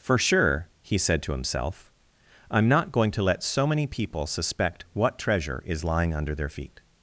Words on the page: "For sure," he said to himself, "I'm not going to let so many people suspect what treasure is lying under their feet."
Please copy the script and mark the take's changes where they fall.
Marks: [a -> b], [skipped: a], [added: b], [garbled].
"For sure," he said to himself, "I'm not going to let so many people suspect what treasure is lying under their feet."